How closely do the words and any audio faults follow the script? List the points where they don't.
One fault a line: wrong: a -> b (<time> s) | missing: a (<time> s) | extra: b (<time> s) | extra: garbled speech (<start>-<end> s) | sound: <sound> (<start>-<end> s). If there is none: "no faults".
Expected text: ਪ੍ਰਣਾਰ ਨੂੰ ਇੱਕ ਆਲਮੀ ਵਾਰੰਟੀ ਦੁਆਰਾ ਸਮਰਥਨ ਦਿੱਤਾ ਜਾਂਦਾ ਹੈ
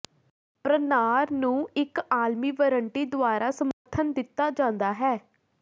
sound: dropout (3.7-3.9 s)